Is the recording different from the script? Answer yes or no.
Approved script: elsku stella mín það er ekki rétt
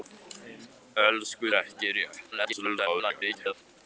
yes